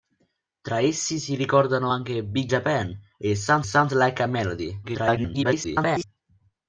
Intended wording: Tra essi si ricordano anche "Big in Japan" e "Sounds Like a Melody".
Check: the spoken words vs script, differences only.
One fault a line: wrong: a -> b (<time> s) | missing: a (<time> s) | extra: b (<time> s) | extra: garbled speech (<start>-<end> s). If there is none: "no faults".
missing: in (2.5 s)
extra: sounds (3.6 s)
extra: garbled speech (4.8-6.0 s)